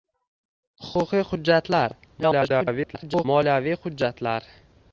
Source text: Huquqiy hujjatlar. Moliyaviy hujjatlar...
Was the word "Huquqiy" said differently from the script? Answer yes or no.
no